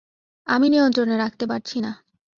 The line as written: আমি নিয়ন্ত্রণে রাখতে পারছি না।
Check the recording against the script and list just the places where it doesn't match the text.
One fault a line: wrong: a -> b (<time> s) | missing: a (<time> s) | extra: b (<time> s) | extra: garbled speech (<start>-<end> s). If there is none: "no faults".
no faults